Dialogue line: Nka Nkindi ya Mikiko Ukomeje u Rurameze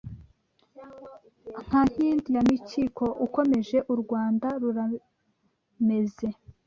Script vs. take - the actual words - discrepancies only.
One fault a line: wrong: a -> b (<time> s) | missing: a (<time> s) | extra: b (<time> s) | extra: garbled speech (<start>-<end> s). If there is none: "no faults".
extra: Rwanda (4.0 s)